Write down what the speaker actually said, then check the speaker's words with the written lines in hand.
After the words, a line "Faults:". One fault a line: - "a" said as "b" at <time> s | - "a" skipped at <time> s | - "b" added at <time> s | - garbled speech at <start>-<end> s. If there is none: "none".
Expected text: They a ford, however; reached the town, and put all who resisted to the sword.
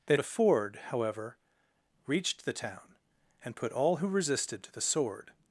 They a ford, however; reached the town, and put all who resisted to the sword.
Faults:
none